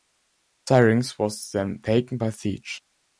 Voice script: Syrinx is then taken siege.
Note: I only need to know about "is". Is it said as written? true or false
false